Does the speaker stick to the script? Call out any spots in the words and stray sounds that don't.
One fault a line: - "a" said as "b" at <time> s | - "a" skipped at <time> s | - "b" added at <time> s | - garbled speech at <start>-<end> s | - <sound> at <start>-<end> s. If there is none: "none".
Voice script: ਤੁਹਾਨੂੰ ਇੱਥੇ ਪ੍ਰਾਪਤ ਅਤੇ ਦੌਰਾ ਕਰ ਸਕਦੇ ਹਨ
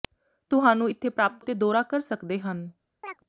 - chirp at 3.0-3.2 s